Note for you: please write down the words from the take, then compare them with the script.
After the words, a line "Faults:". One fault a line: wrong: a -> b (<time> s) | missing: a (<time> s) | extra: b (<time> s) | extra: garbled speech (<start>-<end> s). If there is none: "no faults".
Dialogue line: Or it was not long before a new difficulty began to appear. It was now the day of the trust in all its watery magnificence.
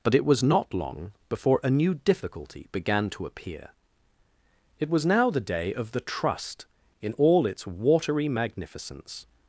But it was not long before a new difficulty began to appear. It was now the day of the trust in all its watery magnificence.
Faults:
wrong: Or -> But (0.0 s)